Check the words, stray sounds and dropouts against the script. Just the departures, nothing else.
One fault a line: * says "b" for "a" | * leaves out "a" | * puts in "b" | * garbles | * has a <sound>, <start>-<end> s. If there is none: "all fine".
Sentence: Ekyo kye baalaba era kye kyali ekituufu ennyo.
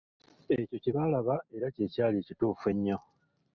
all fine